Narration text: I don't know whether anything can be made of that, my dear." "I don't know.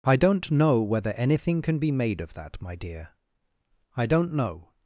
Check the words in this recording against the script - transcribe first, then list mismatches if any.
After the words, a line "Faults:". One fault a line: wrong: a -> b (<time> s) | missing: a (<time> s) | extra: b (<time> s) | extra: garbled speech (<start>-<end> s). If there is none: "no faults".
I don't know whether anything can be made of that, my dear." "I don't know.
Faults:
no faults